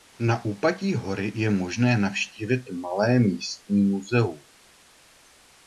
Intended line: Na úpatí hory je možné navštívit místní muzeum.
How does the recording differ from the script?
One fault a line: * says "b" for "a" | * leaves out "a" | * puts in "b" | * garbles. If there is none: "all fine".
* puts in "malé"